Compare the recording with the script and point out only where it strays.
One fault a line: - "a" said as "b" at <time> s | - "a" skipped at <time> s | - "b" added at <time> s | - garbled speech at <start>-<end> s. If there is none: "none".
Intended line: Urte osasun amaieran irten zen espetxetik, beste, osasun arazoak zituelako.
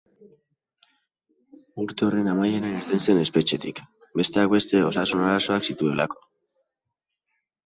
- "osasun" said as "horren" at 2.1 s
- "besteak" added at 4.2 s